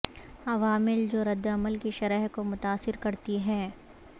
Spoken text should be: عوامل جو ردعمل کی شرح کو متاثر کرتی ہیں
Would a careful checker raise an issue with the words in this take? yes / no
no